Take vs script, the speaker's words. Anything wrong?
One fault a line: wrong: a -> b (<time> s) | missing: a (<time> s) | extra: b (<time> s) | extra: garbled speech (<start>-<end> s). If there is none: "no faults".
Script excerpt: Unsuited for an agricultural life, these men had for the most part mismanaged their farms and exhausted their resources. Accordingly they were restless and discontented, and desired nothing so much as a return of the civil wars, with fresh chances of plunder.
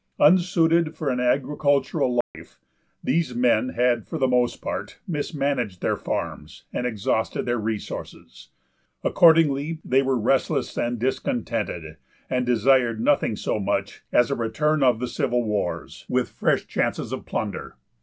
no faults